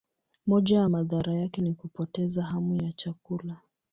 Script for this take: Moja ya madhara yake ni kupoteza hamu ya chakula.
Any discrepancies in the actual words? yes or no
no